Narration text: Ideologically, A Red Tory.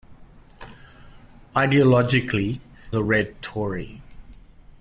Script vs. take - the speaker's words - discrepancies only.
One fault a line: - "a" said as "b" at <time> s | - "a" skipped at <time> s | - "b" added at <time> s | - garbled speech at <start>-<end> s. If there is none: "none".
none